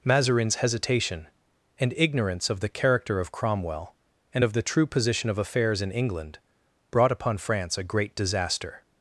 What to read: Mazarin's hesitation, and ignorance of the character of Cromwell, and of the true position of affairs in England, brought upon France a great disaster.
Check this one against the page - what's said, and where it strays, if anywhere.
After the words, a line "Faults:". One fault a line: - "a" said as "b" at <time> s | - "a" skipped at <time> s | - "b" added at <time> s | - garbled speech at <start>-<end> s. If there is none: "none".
Mazarin's hesitation, and ignorance of the character of Cromwell, and of the true position of affairs in England, brought upon France a great disaster.
Faults:
none